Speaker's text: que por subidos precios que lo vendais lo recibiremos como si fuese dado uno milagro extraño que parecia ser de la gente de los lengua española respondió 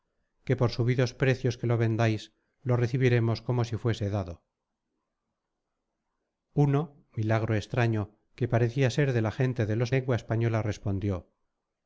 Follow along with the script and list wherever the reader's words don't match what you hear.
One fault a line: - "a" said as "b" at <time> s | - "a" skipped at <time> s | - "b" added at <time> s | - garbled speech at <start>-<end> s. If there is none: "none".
none